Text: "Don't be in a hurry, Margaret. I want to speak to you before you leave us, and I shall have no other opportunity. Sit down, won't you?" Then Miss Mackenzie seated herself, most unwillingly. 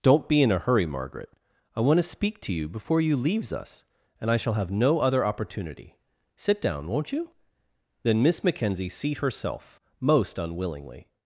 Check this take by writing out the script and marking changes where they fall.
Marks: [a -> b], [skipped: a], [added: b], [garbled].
"Don't be in a hurry, Margaret. I want to speak to you before you [leave -> leaves] us, and I shall have no other opportunity. Sit down, won't you?" Then Miss Mackenzie [seated -> seat] herself, most unwillingly.